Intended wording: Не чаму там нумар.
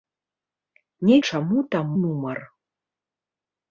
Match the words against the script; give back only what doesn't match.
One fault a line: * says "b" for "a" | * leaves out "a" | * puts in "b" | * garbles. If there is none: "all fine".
all fine